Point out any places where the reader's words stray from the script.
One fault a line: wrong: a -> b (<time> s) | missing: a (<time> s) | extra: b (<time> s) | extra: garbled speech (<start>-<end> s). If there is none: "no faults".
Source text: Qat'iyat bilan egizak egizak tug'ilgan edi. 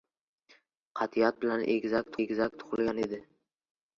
no faults